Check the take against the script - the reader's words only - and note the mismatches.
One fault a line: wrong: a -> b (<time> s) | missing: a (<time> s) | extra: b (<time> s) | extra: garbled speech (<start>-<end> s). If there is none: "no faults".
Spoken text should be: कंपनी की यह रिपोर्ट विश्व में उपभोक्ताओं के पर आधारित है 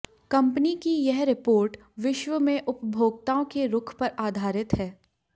extra: रुख (3.7 s)